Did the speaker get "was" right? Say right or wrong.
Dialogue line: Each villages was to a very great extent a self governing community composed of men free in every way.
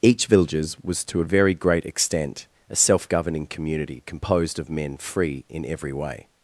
right